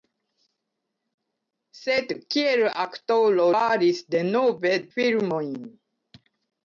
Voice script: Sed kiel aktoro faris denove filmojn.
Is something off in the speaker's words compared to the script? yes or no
no